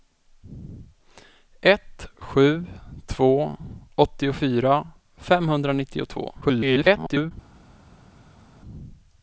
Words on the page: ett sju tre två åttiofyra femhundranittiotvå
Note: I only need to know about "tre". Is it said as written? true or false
false